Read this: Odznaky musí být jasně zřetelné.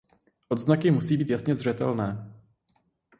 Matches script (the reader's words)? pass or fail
pass